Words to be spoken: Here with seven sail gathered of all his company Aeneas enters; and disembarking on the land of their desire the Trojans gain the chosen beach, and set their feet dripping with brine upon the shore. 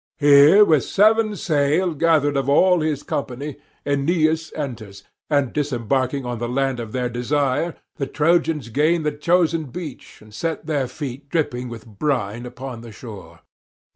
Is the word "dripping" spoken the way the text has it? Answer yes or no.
yes